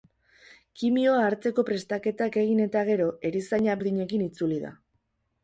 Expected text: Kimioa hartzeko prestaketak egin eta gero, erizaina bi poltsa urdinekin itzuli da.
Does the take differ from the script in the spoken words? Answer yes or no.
yes